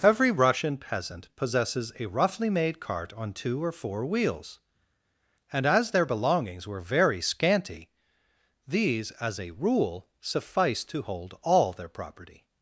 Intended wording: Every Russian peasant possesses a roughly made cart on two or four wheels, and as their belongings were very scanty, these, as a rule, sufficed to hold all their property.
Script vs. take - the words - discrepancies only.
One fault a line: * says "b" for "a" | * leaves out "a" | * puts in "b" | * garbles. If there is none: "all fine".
all fine